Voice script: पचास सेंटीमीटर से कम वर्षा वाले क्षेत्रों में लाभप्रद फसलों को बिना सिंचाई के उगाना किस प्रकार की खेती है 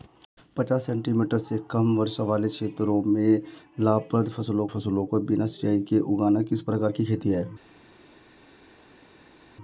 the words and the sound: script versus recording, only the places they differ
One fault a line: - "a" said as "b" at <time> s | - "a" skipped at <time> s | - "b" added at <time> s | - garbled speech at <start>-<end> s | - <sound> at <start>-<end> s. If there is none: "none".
- "फसलों" added at 4.7 s